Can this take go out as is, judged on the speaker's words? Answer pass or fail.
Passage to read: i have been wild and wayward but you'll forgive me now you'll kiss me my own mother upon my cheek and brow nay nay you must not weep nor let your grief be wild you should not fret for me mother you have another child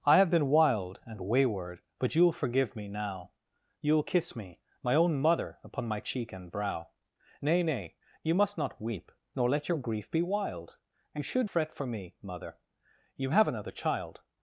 fail